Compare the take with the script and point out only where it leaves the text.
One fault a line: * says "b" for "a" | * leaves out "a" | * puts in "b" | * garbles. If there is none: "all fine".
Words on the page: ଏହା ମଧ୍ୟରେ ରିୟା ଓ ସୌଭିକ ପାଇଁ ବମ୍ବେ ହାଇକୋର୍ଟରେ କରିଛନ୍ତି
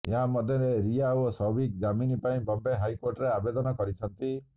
* puts in "ଜାମିନ"
* puts in "ଆବେଦନ"